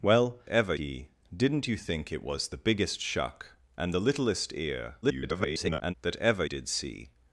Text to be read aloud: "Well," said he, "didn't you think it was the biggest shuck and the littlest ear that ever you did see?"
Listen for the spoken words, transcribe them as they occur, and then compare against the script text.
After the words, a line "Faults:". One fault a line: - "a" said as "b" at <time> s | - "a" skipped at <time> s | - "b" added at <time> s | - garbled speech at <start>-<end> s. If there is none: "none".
"Well," ever he, "didn't you think it was the biggest shuck and the littlest ear [garbled] that ever did see?"
Faults:
- "said" said as "ever" at 0.5 s
- garbled speech at 5.0-5.9 s
- "you" skipped at 6.4 s